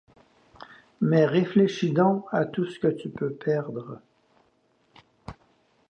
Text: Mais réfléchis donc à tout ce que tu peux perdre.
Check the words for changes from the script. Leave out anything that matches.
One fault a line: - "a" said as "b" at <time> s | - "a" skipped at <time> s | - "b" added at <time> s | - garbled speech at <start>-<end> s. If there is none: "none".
none